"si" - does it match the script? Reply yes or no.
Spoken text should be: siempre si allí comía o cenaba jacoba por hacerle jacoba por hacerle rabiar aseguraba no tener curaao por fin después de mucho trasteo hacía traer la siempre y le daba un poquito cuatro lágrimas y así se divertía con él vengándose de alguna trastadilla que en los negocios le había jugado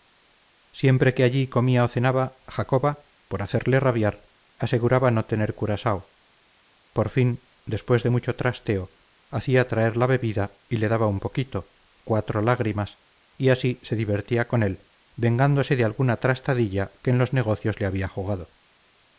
no